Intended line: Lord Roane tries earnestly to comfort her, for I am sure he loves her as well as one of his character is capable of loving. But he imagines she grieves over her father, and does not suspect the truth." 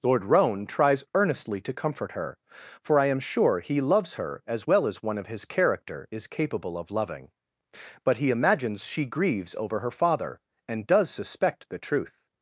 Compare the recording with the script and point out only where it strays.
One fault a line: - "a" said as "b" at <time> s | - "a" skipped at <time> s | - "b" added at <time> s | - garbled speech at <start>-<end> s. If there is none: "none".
- "not" skipped at 11.1 s